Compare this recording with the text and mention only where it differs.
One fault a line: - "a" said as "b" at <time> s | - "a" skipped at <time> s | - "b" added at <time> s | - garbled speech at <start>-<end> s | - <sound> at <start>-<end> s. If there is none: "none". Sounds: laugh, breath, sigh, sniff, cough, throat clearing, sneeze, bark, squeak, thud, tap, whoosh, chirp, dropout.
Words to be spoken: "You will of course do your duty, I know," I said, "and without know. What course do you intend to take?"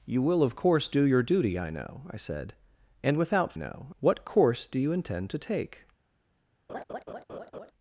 - laugh at 6.7-7.7 s